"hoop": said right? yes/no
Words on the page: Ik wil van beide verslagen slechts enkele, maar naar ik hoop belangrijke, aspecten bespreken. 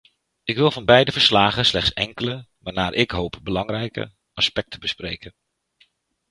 yes